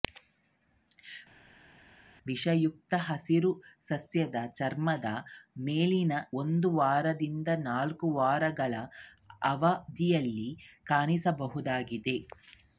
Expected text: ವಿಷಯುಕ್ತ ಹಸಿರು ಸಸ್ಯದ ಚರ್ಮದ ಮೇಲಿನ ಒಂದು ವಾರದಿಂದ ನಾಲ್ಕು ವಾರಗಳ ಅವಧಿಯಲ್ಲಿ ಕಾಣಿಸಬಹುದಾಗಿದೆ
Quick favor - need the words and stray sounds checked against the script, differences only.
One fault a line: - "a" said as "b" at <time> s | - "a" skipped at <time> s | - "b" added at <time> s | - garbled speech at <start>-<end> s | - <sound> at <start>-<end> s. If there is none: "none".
none